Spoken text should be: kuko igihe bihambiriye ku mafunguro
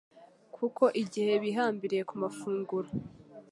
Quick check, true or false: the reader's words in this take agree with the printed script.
true